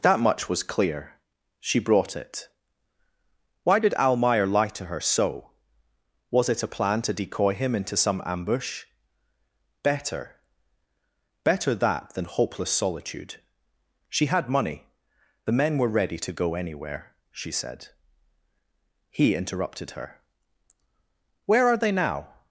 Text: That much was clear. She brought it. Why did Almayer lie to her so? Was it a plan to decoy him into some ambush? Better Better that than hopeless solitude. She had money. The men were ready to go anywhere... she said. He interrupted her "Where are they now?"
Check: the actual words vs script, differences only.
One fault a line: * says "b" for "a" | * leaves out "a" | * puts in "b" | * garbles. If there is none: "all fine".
all fine